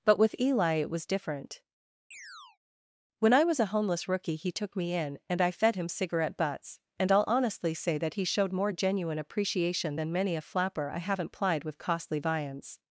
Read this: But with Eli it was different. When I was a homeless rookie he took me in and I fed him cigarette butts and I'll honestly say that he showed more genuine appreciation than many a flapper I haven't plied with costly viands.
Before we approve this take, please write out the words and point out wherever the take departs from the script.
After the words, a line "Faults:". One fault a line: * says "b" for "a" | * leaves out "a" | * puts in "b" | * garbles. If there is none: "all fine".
But with Eli it was different. When I was a homeless rookie he took me in and I fed him cigarette butts and I'll honestly say that he showed more genuine appreciation than many a flapper I haven't plied with costly viands.
Faults:
all fine